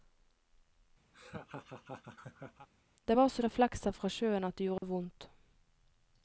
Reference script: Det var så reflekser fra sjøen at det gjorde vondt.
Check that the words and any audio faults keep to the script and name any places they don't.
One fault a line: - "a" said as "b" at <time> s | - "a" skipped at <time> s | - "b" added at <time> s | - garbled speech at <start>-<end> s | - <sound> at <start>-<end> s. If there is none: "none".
- laugh at 1.1-2.7 s
- dropout at 4.8-4.8 s